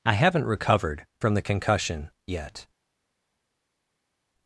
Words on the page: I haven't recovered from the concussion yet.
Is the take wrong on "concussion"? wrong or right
right